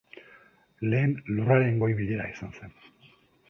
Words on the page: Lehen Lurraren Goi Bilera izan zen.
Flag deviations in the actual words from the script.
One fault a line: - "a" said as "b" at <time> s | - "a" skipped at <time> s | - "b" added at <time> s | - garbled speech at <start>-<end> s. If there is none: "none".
none